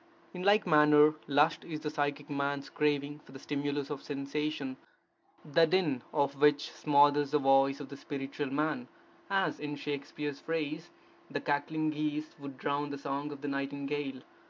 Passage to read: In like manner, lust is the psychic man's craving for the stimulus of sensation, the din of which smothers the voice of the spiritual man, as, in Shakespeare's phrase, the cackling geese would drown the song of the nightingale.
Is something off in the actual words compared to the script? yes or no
no